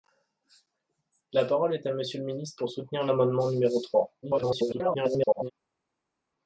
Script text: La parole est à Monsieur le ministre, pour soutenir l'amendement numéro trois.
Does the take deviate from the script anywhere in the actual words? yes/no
yes